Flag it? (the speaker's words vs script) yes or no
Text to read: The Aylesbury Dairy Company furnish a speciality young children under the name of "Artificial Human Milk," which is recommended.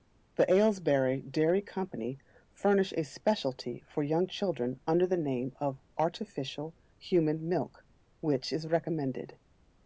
yes